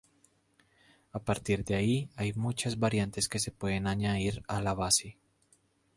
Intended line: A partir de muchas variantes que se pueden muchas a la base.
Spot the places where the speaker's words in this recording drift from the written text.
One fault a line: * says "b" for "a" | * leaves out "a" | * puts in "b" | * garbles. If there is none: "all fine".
* puts in "ahí hay"
* says "añadir" for "muchas"